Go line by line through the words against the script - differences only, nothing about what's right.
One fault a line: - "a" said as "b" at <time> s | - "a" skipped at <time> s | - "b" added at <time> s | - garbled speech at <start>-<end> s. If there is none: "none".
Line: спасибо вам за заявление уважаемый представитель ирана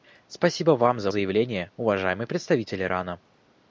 none